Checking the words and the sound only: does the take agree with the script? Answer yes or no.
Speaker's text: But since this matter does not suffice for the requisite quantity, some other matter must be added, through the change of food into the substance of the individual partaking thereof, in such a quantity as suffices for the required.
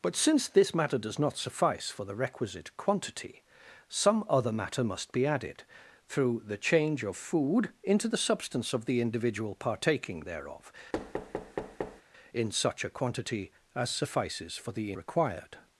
no